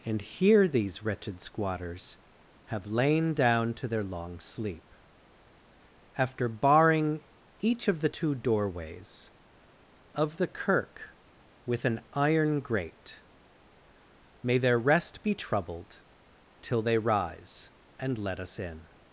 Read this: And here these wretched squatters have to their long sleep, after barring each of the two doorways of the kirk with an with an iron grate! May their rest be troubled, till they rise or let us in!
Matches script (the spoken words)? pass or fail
fail